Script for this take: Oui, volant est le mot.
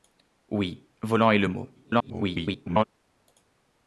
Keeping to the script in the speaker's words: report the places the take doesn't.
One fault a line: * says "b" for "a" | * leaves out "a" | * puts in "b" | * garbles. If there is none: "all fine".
* garbles